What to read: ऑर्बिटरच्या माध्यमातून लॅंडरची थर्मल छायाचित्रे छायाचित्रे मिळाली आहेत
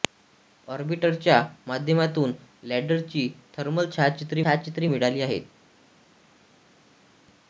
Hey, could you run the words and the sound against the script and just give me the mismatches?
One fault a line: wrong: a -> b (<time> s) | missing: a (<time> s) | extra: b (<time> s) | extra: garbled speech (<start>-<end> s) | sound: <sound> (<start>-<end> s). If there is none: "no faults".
no faults